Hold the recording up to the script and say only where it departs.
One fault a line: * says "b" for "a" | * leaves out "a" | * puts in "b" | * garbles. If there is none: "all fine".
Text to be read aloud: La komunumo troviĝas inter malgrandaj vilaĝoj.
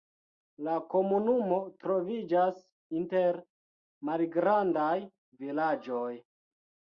all fine